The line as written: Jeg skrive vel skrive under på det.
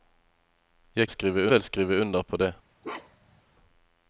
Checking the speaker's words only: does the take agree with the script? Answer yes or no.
yes